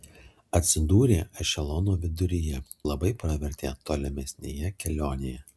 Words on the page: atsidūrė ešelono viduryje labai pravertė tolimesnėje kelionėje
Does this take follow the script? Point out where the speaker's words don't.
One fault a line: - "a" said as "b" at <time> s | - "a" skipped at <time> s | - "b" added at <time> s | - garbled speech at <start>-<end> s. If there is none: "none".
none